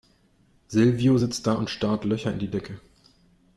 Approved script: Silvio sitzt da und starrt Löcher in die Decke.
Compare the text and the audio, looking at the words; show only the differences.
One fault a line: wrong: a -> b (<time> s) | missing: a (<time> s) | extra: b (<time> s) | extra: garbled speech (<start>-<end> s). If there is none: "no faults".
no faults